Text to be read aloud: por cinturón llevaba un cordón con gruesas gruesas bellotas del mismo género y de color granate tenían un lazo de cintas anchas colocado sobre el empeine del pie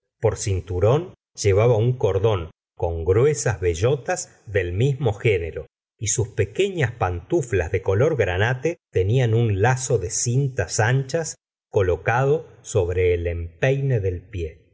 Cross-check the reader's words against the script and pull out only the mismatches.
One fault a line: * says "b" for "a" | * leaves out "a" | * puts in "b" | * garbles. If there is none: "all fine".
* leaves out "gruesas"
* puts in "sus pequeñas pantuflas"